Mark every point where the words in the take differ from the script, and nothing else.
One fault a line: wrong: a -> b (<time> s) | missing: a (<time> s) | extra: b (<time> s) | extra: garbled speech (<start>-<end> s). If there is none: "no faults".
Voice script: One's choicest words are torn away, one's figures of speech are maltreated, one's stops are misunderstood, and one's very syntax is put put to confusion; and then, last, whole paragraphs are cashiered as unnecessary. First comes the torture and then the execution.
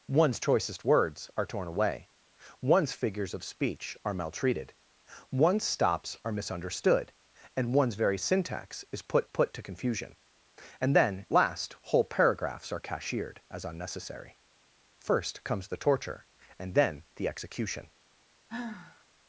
no faults